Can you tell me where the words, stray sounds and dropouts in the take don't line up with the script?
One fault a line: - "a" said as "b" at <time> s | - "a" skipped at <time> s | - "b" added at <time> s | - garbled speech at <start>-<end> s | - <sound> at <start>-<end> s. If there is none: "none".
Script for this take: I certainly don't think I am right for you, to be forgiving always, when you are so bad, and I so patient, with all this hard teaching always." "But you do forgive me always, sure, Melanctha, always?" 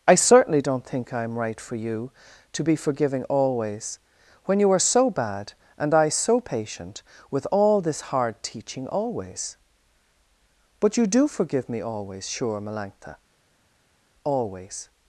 none